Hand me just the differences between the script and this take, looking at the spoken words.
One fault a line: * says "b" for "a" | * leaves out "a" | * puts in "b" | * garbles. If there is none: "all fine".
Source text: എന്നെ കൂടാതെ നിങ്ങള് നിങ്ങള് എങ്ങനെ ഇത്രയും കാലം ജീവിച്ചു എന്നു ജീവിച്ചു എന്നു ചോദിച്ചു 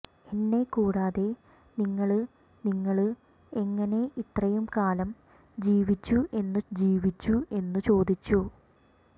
all fine